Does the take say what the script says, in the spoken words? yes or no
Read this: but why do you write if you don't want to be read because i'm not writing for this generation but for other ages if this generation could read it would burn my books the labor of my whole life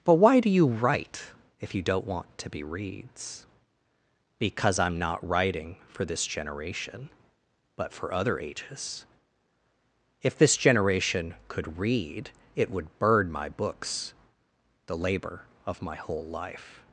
no